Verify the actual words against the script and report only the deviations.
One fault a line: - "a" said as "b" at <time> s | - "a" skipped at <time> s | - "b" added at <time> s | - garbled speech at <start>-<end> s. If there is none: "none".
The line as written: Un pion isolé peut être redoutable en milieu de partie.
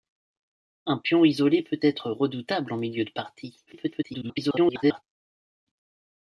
- garbled speech at 3.7-5.0 s